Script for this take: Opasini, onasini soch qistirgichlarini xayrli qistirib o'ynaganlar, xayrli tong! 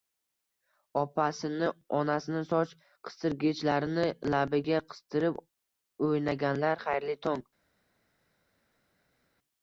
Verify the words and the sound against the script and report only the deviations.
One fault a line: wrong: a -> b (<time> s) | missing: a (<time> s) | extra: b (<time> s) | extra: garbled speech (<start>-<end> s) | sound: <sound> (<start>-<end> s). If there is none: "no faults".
wrong: xayrli -> labiga (4.4 s)